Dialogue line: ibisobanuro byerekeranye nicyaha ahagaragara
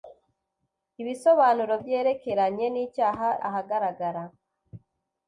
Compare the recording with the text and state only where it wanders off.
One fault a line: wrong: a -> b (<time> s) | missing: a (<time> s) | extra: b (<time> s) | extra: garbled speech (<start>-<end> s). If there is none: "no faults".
no faults